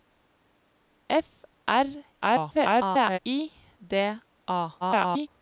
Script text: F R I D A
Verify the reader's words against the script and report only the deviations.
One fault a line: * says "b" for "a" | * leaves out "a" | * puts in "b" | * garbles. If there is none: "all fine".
* garbles
* garbles